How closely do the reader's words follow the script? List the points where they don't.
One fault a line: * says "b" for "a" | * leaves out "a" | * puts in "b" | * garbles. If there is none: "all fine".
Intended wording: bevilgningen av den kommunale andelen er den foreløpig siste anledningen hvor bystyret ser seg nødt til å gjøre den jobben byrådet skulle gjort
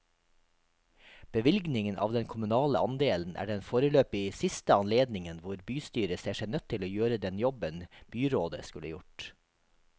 all fine